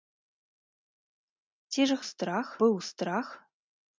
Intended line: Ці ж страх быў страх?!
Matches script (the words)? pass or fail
pass